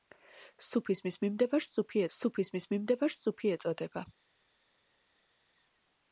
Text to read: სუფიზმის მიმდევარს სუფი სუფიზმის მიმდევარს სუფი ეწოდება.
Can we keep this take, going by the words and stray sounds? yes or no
yes